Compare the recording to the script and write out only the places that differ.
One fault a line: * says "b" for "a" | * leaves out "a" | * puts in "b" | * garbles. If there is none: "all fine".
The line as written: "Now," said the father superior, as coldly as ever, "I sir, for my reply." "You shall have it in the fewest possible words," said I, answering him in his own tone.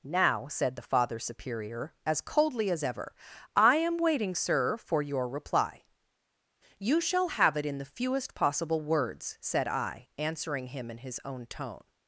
* puts in "am waiting"
* says "your" for "my"